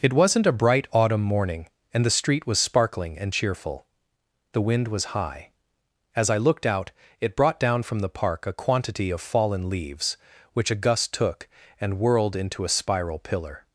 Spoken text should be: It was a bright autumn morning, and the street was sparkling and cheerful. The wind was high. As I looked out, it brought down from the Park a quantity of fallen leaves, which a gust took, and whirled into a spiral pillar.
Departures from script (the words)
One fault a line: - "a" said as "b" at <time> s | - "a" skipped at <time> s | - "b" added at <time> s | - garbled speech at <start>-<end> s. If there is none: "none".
- "was" said as "wasn't" at 0.1 s